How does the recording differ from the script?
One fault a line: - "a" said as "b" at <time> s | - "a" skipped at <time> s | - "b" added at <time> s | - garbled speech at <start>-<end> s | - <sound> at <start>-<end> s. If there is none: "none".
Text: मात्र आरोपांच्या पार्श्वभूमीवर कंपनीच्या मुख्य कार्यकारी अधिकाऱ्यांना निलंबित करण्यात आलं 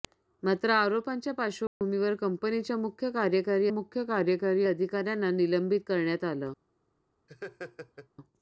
- dropout at 1.7-1.8 s
- "मुख्य कार्यकारी" added at 3.7 s
- laugh at 7.3-8.1 s